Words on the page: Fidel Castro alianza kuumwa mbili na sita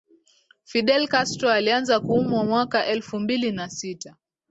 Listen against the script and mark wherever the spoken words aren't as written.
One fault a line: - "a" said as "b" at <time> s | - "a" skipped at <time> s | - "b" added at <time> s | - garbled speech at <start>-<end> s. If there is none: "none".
- "mwaka elfu" added at 2.4 s